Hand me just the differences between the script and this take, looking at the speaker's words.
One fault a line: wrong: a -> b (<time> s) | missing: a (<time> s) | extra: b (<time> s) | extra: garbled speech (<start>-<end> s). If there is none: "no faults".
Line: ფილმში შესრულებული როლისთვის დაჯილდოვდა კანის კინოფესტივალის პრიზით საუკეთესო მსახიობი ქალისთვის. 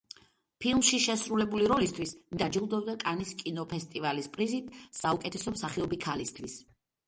no faults